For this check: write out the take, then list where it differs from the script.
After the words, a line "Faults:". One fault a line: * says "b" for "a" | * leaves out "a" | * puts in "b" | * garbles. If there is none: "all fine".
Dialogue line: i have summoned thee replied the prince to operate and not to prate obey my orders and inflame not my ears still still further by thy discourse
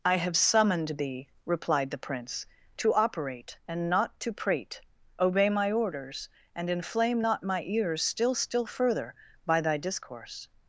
i have summoned thee replied the prince to operate and not to prate obey my orders and inflame not my ears still still further by thy discourse
Faults:
all fine